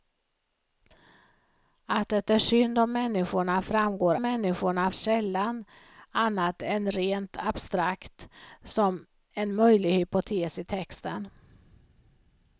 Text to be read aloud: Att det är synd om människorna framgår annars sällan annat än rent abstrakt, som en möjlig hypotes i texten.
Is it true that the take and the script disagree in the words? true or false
true